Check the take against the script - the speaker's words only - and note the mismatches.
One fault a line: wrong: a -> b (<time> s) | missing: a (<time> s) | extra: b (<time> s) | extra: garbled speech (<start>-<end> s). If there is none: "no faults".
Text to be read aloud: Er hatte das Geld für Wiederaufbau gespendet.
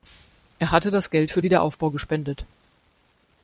no faults